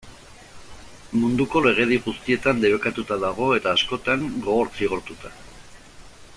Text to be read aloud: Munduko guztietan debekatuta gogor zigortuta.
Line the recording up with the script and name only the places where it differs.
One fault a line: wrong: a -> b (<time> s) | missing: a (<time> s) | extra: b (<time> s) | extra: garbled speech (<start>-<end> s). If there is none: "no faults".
extra: legedi (1.7 s)
extra: dago eta askotan (3.3 s)